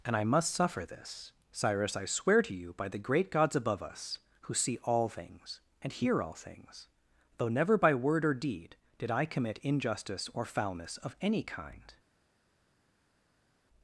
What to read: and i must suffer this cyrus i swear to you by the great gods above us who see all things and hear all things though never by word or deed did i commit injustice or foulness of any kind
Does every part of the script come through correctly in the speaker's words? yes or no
yes